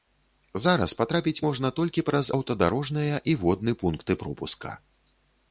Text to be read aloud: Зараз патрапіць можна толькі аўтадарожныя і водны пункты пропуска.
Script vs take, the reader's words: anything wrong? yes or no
yes